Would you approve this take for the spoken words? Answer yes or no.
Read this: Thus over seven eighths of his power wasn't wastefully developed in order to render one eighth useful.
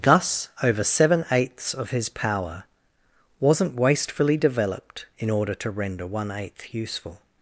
yes